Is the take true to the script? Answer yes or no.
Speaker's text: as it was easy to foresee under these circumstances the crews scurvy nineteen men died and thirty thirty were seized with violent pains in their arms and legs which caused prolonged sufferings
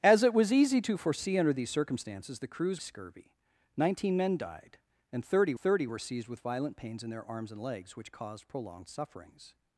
yes